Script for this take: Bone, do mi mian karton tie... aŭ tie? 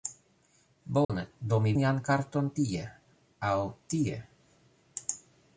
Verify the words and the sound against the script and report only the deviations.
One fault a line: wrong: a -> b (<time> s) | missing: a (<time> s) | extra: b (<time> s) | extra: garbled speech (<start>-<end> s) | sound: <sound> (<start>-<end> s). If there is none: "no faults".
sound: dropout (1.0-1.1 s)